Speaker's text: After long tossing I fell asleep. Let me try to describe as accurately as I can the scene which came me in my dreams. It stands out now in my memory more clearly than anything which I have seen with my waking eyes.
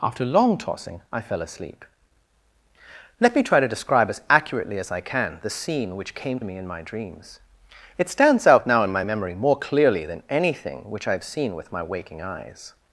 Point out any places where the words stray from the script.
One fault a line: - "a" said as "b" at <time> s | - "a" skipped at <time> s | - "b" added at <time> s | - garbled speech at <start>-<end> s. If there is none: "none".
none